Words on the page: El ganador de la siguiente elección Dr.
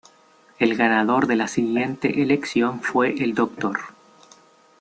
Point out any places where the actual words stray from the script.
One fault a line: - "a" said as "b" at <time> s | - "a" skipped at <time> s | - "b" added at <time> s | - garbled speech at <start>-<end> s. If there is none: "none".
- "fue el" added at 2.8 s